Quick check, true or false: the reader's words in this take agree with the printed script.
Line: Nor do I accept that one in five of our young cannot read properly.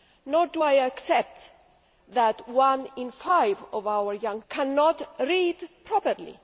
true